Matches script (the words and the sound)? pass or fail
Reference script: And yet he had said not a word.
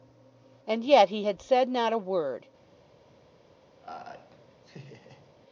fail